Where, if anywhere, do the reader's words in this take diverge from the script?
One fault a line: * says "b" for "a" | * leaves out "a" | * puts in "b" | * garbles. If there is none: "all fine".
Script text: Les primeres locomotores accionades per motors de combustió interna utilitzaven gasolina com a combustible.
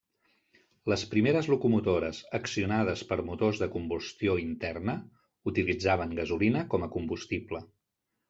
all fine